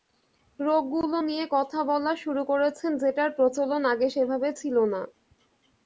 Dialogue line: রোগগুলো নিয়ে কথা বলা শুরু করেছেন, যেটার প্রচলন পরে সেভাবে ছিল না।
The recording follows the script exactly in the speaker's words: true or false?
false